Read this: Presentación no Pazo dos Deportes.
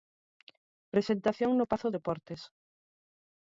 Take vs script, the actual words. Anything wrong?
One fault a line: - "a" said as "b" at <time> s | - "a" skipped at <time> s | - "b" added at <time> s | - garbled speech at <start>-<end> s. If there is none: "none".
- "dos" skipped at 1.9 s